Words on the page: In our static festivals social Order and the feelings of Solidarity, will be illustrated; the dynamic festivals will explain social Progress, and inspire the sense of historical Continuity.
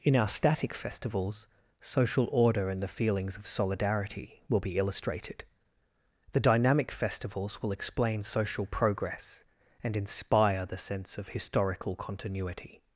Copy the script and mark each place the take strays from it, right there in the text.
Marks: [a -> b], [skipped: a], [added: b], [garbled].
In our static festivals social Order and the feelings of Solidarity, will be illustrated; the dynamic festivals will explain social Progress, and inspire the sense of historical Continuity.